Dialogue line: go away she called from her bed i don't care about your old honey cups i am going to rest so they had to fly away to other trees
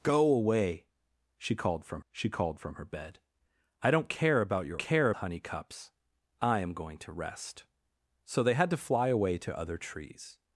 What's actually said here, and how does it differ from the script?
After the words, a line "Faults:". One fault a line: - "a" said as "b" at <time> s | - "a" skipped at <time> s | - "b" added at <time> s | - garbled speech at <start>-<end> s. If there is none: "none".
go away she called from she called from her bed i don't care about your care honey cups i am going to rest so they had to fly away to other trees
Faults:
- "she called from" added at 2.1 s
- "old" said as "care" at 4.8 s